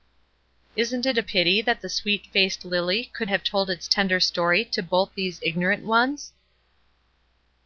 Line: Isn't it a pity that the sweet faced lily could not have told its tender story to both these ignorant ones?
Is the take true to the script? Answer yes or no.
no